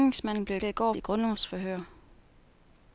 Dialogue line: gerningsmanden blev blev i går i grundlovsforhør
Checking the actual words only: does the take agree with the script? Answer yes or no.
yes